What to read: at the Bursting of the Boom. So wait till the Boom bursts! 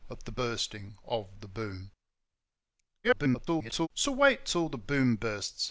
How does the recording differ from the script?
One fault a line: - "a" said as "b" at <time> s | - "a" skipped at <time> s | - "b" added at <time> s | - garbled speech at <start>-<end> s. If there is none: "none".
- garbled speech at 3.0-3.9 s